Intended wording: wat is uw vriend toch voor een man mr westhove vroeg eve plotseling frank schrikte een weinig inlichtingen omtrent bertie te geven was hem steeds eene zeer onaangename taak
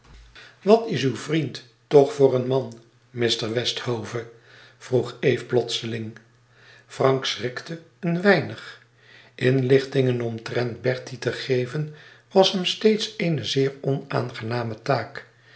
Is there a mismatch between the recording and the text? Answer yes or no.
no